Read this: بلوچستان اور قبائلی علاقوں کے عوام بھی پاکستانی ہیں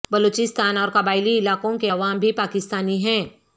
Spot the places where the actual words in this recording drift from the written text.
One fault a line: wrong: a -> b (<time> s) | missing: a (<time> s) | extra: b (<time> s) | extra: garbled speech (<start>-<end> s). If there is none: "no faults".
no faults